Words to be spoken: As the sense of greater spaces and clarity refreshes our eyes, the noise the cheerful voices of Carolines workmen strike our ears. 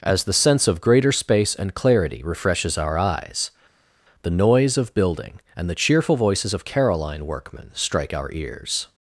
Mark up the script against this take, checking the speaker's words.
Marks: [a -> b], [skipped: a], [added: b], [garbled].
As the sense of greater [spaces -> space] and clarity refreshes our eyes, the noise [added: of building and] the cheerful voices of [Carolines -> Caroline] workmen strike our ears.